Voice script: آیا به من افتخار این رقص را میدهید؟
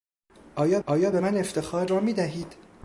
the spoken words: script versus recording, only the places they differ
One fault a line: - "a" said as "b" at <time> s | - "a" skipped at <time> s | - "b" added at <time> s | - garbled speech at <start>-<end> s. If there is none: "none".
- "آیا" added at 0.9 s
- "این رقص" skipped at 1.9 s